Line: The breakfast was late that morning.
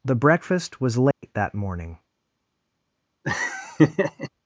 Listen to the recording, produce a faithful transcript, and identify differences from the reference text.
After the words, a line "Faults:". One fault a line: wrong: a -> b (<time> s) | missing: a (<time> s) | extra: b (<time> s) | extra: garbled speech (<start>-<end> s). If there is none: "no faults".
The breakfast was late that morning.
Faults:
no faults